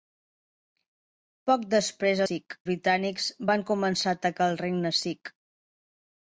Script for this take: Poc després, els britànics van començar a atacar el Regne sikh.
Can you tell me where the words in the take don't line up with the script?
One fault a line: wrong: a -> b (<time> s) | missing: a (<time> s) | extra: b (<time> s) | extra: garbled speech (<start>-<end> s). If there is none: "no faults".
wrong: els -> sikh (2.3 s)